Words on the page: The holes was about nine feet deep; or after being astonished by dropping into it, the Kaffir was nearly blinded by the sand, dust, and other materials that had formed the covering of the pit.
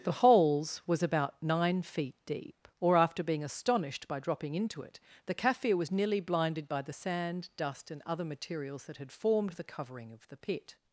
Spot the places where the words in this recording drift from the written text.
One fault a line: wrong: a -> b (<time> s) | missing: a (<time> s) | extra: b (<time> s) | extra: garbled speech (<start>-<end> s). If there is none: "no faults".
no faults